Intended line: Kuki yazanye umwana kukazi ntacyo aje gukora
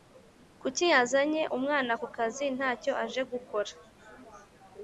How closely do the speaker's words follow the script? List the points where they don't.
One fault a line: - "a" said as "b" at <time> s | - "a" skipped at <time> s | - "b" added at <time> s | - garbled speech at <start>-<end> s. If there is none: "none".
none